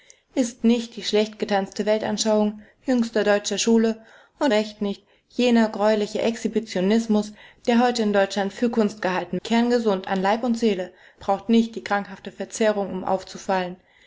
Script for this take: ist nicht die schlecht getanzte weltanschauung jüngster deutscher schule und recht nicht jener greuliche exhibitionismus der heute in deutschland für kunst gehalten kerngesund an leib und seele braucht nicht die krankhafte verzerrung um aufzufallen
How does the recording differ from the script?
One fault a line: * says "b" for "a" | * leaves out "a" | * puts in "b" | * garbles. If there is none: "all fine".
all fine